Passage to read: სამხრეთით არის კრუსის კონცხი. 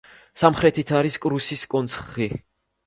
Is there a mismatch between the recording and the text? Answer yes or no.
no